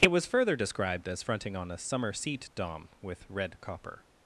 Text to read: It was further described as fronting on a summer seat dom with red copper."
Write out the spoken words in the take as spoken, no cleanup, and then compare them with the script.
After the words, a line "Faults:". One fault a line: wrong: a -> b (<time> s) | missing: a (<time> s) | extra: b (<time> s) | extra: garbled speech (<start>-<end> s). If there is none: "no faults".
It was further described as fronting on a summer seat dom with red copper."
Faults:
no faults